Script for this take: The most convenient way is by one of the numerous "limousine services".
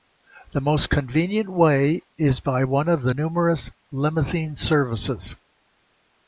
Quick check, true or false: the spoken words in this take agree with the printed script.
true